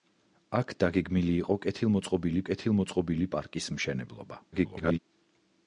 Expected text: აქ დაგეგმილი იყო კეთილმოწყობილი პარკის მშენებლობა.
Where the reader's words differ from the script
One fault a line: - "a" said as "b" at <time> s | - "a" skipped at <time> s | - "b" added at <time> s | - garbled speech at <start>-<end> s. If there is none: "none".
- "კეთილმოწყობილი" added at 2.5 s
- garbled speech at 4.5-5.0 s